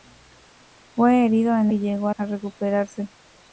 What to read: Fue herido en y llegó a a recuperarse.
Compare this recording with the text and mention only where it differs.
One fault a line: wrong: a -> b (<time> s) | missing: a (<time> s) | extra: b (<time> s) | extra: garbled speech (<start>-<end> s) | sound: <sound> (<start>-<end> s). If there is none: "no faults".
no faults